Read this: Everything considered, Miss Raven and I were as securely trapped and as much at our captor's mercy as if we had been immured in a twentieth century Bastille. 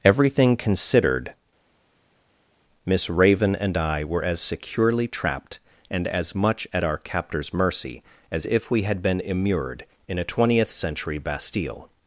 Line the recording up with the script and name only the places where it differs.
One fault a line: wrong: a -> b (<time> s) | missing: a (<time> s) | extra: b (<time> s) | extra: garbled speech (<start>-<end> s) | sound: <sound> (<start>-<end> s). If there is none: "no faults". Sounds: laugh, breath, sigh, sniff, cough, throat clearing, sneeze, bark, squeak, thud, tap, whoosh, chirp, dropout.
no faults